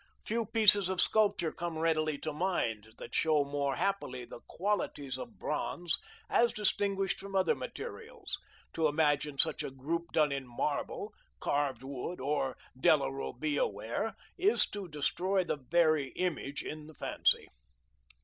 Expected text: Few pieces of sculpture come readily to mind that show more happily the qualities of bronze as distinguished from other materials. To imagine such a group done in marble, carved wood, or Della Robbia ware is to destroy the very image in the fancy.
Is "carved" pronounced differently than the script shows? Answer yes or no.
no